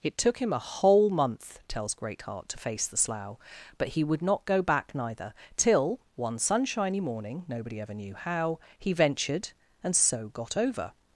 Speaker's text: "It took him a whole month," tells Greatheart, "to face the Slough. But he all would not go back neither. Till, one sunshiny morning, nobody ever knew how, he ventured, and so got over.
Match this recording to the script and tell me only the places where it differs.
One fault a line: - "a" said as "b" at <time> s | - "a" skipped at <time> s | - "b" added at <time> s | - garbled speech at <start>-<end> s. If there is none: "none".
- "all" skipped at 4.0 s